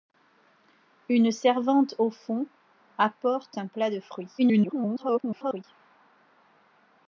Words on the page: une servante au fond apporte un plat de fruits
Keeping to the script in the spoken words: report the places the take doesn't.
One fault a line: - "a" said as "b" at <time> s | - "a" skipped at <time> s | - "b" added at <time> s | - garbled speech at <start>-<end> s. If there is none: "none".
- garbled speech at 4.4-5.6 s